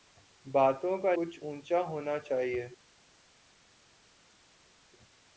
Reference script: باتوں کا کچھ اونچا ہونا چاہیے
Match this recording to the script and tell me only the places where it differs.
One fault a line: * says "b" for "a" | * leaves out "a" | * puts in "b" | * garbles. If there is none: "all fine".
all fine